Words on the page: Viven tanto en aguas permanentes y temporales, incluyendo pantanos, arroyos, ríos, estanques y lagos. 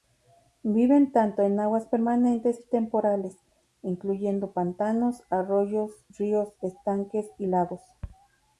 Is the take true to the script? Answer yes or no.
yes